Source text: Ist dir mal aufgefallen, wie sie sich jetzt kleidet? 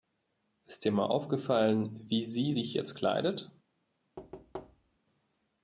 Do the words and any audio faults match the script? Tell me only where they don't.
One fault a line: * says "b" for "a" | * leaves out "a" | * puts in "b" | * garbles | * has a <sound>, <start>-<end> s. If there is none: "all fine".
* has a thud, 4.2-5.0 s